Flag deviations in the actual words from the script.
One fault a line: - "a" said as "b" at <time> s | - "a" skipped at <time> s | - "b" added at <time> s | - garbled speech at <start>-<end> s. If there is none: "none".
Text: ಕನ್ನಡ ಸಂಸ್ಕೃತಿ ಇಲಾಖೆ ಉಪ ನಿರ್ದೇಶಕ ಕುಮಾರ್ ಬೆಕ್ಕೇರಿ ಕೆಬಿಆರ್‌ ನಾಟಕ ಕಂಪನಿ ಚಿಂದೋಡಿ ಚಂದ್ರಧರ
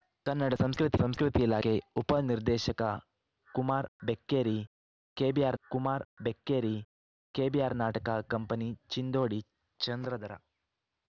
- "ಸಂಸ್ಕೃತಿ" added at 0.9 s
- "ಕುಮಾರ್ ಬೆಕ್ಕೇರಿ ಕೆಬಿಆರ್" added at 5.6 s